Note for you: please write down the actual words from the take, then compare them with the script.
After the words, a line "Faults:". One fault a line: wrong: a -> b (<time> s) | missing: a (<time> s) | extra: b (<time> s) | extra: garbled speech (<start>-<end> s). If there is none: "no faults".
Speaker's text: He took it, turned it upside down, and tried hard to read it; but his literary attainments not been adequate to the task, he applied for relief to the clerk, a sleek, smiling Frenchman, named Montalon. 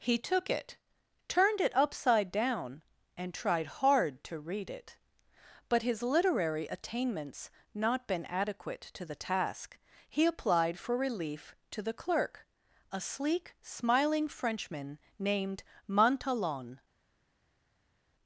He took it, turned it upside down, and tried hard to read it; but his literary attainments not been adequate to the task, he applied for relief to the clerk, a sleek, smiling Frenchman, named Montalon.
Faults:
no faults